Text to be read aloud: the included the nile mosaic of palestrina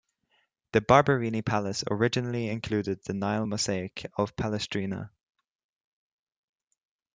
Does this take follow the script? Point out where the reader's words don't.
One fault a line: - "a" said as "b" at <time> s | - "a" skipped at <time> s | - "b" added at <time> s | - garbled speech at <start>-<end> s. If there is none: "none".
- "barberini palace originally" added at 0.8 s